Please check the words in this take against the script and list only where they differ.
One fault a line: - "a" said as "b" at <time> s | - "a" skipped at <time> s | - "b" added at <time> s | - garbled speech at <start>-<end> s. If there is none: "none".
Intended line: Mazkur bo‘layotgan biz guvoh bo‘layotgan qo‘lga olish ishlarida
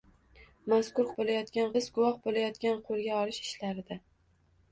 none